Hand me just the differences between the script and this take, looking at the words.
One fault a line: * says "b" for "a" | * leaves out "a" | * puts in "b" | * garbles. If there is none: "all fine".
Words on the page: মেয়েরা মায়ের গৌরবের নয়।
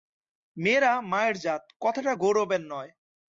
* puts in "জাত কথাটা"